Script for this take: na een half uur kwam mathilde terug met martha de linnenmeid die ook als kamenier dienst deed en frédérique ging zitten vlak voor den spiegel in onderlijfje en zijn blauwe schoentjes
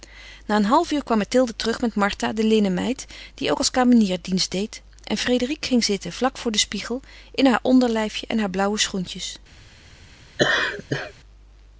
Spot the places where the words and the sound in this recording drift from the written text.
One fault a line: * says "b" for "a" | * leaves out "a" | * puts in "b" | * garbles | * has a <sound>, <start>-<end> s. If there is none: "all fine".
* puts in "haar"
* says "haar" for "zijn"
* has a laugh, 10.4-11.1 s